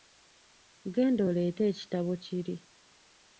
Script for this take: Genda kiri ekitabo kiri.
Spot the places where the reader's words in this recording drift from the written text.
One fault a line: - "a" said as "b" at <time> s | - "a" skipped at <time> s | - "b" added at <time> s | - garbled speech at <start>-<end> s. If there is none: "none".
- "kiri" said as "oleete" at 1.3 s